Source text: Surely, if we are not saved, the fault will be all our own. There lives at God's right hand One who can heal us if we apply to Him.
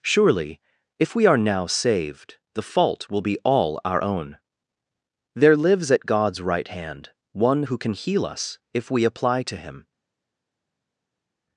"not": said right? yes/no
no